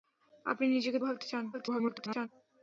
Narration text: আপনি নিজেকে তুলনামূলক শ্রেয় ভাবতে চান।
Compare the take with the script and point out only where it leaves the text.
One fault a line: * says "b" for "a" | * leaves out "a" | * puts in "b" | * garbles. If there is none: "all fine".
* leaves out "তুলনামূলক শ্রেয়"
* garbles